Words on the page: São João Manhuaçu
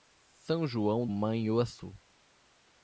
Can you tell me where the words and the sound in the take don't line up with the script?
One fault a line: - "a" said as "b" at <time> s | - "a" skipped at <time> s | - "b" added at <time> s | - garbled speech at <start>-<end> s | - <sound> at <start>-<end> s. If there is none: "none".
none